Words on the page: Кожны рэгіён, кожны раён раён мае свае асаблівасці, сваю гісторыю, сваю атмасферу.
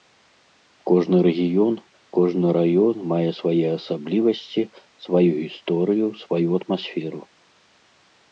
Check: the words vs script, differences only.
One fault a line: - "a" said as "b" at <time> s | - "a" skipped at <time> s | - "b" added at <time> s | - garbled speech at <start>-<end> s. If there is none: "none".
- "раён" skipped at 3.0 s